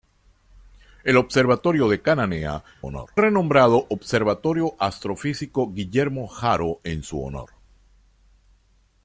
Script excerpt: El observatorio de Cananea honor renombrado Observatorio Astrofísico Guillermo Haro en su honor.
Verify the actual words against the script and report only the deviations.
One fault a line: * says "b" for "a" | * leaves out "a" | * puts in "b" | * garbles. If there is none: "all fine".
all fine